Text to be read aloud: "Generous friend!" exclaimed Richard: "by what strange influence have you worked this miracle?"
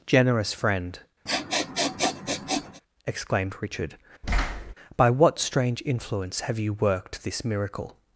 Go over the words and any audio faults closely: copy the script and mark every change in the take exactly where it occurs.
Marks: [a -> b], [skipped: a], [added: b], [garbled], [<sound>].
"Generous friend!" [sniff] exclaimed Richard: [thud] "by what strange influence have you worked this miracle?"